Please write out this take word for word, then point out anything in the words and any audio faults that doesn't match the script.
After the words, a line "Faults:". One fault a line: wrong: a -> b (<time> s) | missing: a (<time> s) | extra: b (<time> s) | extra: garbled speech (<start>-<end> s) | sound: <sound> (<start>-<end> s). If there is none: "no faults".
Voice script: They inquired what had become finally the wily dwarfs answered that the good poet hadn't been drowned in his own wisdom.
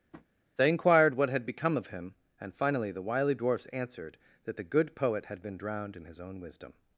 They inquired what had become of him, and finally the wily dwarfs answered that the good poet had been drowned in his own wisdom.
Faults:
sound: tap (0.1-0.3 s)
extra: of him and (1.8 s)
wrong: hadn't -> had (5.2 s)